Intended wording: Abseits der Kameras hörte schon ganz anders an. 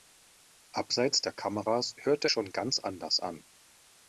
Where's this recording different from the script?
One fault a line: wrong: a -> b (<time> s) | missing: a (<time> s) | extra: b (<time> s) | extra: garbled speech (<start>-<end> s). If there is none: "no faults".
no faults